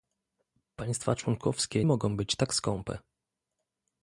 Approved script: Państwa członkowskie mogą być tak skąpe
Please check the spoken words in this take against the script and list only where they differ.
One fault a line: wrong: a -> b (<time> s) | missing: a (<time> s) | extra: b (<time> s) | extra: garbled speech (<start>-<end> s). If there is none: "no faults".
no faults